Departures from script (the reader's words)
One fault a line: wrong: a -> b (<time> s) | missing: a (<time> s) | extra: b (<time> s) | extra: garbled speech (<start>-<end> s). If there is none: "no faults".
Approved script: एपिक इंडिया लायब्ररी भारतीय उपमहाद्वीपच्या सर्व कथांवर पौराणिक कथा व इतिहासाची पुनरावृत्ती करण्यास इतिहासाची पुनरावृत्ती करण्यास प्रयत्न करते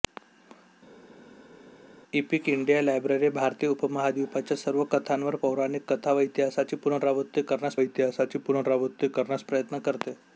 no faults